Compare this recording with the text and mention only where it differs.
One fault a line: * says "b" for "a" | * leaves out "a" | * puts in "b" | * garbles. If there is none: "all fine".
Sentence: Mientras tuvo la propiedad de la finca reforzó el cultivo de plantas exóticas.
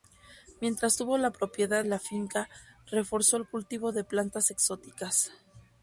* leaves out "de"